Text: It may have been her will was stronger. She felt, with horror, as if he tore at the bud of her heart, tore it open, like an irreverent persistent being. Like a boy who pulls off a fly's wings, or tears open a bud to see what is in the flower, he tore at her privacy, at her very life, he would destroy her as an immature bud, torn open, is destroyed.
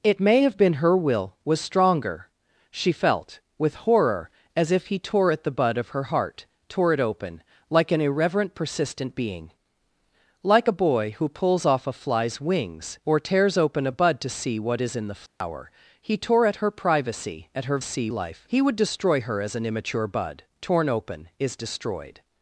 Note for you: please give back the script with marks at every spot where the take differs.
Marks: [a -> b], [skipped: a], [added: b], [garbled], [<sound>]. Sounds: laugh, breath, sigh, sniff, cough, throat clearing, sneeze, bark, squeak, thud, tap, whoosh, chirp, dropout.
It may have been her will was stronger. She felt, with horror, as if he tore at the bud of her heart, tore it open, like an irreverent persistent being. Like a boy who pulls off a fly's wings, or tears open a bud to see what is in the flower, [dropout] he tore at her privacy, at her [very -> see] life, he would destroy her as an immature bud, torn open, is destroyed.